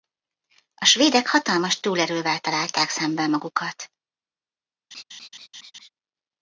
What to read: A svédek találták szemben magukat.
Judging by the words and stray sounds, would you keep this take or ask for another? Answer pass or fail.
fail